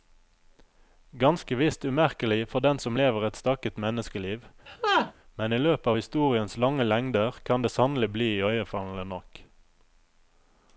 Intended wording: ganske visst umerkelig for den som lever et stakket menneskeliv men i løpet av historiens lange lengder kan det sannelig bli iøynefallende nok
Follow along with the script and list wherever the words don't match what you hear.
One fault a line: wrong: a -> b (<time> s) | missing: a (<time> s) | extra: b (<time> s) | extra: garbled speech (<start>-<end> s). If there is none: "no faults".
no faults